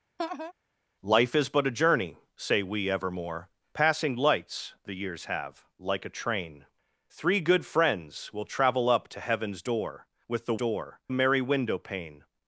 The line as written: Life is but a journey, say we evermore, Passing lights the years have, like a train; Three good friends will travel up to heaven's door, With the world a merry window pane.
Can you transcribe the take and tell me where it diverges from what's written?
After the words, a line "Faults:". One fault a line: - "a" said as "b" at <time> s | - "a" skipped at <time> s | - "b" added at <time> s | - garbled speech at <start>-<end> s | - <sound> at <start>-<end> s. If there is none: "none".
Life is but a journey, say we evermore, Passing lights the years have, like a train; Three good friends will travel up to heaven's door, With the door a merry window pane.
Faults:
- laugh at 0.2-0.5 s
- "world" said as "door" at 10.5 s